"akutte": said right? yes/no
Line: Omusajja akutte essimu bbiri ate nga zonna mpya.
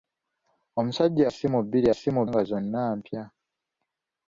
no